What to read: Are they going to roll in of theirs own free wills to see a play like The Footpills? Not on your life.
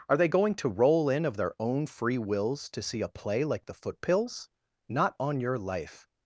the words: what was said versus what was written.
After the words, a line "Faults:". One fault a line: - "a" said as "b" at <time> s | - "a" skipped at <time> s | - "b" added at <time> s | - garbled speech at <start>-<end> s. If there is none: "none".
Are they going to roll in of their own free wills to see a play like The Footpills? Not on your life.
Faults:
- "theirs" said as "their" at 1.4 s